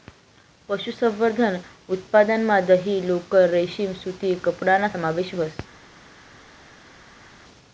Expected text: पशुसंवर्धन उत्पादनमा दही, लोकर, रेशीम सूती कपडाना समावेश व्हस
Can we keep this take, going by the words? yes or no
yes